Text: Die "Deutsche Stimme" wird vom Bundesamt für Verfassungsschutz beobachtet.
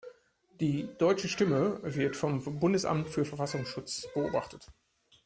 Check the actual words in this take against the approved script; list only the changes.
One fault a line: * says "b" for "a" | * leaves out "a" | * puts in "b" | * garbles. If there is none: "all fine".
all fine